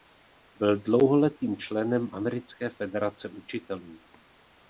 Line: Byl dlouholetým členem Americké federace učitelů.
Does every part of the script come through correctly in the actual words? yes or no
yes